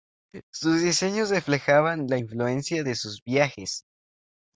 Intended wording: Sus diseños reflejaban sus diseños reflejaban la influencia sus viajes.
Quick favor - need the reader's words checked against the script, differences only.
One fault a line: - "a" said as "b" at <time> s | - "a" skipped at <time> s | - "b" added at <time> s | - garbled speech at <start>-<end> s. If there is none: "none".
- "sus diseños reflejaban" skipped at 2.1 s
- "de" added at 2.8 s